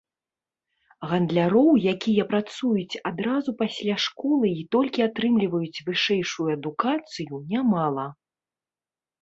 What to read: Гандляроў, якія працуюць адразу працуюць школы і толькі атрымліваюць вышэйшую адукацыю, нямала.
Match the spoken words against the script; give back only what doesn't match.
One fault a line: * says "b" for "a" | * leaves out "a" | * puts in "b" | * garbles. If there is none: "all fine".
* says "пасля" for "працуюць"